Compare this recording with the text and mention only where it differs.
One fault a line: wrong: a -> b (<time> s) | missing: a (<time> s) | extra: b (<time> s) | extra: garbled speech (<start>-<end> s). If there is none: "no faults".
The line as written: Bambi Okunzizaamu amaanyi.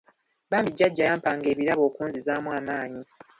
extra: Jjajja yampanga ebirabo (0.7 s)